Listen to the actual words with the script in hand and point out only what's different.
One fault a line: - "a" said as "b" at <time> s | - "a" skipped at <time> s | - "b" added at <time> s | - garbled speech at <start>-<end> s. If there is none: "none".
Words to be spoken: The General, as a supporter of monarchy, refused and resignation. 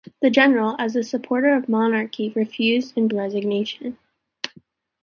none